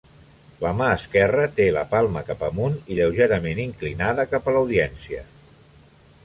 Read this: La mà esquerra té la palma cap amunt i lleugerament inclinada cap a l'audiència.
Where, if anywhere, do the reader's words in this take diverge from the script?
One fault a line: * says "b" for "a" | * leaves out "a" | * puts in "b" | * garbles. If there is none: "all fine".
all fine